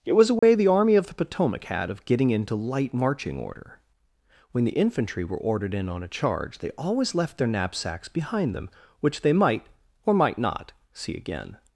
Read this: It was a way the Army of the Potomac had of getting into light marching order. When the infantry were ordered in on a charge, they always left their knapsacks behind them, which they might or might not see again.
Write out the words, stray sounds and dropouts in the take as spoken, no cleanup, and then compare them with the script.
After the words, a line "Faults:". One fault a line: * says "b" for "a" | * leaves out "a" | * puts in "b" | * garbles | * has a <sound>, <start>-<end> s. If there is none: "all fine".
It was a way the Army of the Potomac had of getting into light marching order. When the infantry were ordered in on a charge, they always left their knapsacks behind them, which they might or might not see again.
Faults:
* has a dropout, 0.4-0.4 s